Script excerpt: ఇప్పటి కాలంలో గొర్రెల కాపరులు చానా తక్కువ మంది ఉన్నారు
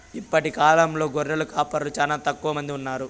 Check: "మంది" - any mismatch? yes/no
no